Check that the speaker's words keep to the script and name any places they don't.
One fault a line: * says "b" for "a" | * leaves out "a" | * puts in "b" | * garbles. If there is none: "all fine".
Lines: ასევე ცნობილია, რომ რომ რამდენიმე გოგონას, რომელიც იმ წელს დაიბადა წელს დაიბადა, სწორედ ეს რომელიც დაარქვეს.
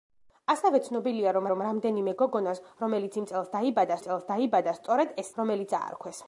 all fine